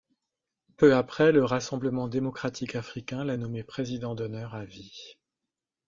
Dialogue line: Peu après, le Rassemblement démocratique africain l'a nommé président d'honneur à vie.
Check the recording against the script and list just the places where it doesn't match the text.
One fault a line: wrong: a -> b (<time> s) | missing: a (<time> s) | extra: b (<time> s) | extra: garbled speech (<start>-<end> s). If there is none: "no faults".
no faults